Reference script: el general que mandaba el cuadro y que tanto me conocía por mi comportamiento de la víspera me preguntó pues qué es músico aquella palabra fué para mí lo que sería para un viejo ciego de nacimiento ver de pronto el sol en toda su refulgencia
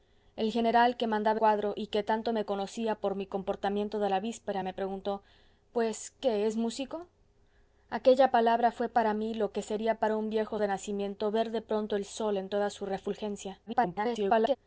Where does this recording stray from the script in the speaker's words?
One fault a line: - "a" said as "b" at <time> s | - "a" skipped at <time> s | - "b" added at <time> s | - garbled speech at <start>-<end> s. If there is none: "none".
- "el" skipped at 1.4 s
- "ciego" skipped at 10.6 s
- garbled speech at 13.7-14.6 s